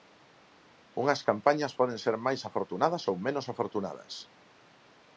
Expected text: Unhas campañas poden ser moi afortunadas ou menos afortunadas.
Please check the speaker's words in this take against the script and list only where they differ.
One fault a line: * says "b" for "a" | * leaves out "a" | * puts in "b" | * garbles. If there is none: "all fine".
* says "máis" for "moi"